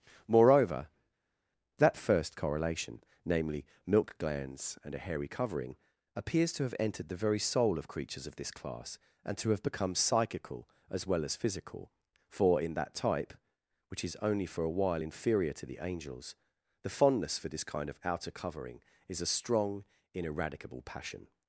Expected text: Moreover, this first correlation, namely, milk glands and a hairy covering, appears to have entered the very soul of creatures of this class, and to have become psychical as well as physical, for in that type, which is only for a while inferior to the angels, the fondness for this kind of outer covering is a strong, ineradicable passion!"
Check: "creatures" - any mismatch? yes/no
no